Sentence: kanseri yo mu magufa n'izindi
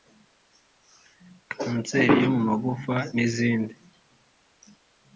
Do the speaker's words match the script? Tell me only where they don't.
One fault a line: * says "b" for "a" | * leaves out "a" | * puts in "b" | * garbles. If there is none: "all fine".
all fine